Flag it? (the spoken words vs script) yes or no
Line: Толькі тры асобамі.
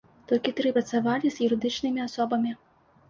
yes